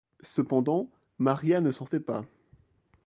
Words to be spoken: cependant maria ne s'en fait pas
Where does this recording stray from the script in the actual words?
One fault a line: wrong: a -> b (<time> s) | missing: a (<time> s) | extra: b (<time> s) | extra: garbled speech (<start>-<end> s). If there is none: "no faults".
no faults